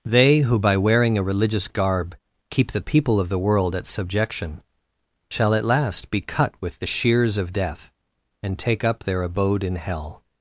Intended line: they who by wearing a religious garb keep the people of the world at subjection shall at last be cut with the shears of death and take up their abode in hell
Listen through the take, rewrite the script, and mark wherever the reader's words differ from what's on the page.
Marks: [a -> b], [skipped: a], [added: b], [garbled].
they who by wearing a religious garb keep the people of the world at subjection shall at last be cut with the shears of death and take up their abode in hell